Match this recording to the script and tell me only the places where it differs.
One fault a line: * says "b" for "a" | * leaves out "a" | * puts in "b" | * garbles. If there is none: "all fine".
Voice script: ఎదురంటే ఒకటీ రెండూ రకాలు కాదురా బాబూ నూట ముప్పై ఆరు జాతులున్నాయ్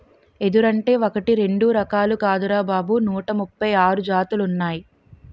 all fine